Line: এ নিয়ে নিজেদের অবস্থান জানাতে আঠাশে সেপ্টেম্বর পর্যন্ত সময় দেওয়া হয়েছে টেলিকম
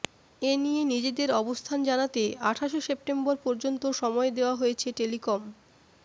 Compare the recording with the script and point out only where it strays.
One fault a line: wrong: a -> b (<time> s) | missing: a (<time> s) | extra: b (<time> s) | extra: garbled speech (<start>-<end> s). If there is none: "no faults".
no faults